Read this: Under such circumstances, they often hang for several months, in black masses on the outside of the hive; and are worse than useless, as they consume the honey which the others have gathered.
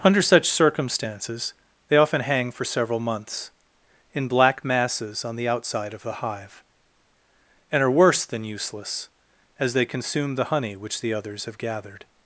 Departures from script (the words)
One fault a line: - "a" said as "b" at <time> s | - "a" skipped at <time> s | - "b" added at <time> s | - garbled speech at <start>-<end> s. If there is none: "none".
none